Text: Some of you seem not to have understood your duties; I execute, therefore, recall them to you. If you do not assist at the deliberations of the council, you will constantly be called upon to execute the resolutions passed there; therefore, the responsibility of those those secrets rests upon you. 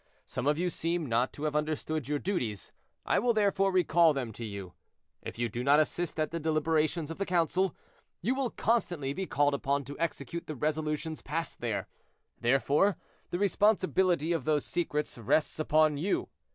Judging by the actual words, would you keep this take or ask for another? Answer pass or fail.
fail